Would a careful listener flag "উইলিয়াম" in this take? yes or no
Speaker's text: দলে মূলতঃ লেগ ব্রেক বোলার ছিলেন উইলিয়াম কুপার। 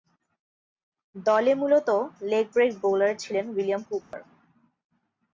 no